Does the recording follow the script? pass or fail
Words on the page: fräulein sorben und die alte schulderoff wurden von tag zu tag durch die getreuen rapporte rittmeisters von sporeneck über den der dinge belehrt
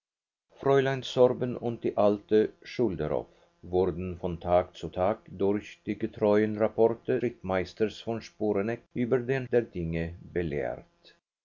pass